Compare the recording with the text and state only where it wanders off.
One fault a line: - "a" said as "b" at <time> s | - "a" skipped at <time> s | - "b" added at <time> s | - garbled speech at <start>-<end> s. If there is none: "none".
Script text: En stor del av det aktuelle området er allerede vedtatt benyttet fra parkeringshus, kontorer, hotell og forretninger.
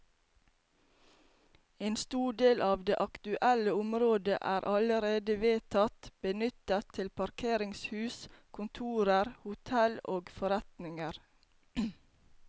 - "fra" said as "til" at 7.0 s